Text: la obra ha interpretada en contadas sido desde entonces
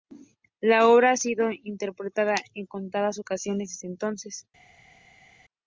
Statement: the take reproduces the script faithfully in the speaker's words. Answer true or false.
false